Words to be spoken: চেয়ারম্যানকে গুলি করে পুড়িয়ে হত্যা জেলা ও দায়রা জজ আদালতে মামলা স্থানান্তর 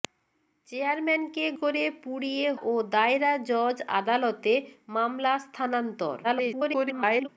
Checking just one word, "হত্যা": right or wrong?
wrong